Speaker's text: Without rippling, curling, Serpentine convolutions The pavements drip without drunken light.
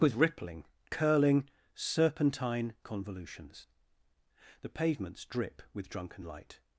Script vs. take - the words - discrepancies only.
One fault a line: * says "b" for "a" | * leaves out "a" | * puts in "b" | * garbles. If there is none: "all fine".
* says "With" for "Without"
* says "with" for "without"